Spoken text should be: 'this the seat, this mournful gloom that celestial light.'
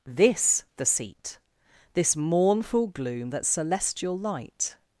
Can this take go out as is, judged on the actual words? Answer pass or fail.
pass